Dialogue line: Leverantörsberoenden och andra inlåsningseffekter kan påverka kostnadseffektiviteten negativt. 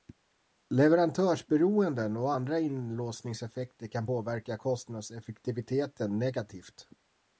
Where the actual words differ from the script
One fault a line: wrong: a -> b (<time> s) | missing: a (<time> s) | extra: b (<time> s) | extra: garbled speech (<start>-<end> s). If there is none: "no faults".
no faults